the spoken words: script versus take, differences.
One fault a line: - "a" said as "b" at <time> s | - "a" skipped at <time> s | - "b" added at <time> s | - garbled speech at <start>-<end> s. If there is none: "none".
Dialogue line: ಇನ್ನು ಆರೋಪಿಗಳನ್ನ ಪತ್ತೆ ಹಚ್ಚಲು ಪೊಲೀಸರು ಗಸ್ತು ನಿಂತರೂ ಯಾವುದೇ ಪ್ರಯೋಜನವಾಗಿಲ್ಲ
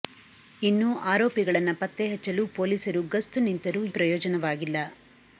- "ಯಾವುದೇ" skipped at 3.8 s